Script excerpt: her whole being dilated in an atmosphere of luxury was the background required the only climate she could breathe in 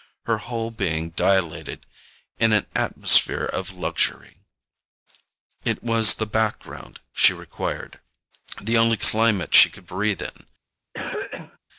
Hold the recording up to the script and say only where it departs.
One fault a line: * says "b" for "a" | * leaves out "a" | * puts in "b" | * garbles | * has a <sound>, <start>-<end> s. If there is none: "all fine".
* puts in "it"
* puts in "she"
* has a cough, 10.9-11.6 s